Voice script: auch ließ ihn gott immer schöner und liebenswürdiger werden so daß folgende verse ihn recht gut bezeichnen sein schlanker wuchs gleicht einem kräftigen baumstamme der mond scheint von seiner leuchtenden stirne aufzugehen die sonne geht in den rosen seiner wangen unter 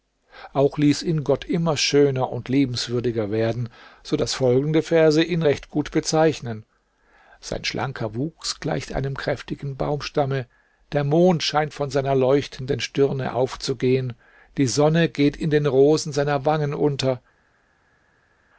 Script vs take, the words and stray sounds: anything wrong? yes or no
no